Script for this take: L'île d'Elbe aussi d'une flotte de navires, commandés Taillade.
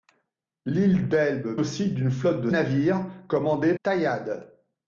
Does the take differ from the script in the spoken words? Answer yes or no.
no